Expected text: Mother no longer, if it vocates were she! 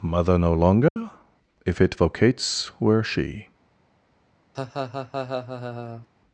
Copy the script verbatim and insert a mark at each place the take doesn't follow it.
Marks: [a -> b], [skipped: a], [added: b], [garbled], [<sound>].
Mother no longer, [dropout] if it vocates were she! [laugh]